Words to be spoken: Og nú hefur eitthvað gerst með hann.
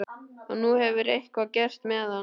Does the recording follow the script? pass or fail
pass